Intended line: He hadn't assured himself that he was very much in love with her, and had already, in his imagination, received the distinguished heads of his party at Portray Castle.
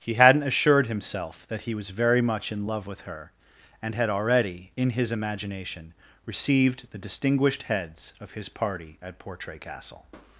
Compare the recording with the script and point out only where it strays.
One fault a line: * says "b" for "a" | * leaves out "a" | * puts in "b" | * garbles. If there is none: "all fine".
all fine